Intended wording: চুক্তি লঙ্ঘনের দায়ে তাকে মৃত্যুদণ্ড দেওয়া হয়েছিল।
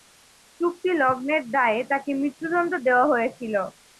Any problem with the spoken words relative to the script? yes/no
no